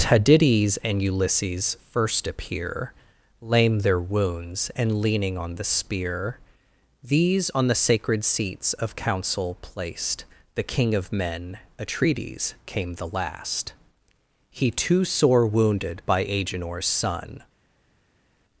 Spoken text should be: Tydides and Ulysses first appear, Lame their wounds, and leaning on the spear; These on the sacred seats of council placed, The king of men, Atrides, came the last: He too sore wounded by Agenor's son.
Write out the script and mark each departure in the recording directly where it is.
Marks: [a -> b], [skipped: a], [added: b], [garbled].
Tydides and Ulysses first appear, Lame their wounds, and leaning on the spear; These on the sacred seats of council placed, The king of men, Atrides, came the last: He too sore wounded by Agenor's son.